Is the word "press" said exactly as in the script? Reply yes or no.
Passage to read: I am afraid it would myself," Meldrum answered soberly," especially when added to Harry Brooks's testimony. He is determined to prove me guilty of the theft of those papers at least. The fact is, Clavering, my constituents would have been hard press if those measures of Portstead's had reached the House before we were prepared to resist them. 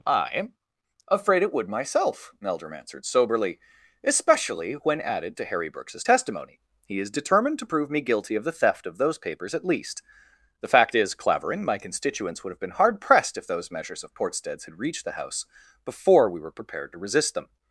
no